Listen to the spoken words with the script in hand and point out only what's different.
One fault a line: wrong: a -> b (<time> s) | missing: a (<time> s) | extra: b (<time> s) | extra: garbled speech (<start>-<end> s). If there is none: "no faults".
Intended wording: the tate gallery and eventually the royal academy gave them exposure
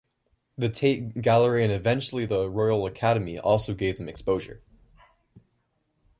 extra: also (3.4 s)